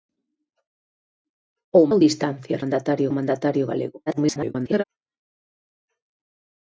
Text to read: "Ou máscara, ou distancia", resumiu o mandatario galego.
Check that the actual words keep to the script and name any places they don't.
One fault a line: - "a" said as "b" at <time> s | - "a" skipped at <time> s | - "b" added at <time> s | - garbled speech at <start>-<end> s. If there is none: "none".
- "máscara" skipped at 1.8 s
- "resumiu" said as "mandatario" at 2.6 s
- garbled speech at 4.1-4.8 s